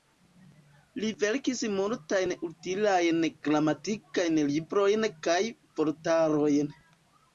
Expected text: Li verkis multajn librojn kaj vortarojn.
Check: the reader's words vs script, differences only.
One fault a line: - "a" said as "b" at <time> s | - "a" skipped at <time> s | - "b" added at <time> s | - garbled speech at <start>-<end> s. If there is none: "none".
- "utilajn gramatikajn" added at 2.5 s